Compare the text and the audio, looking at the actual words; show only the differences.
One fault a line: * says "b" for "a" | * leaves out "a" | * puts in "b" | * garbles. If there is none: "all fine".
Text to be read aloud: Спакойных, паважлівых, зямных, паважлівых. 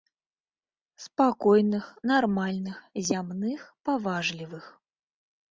* says "нармальных" for "паважлівых"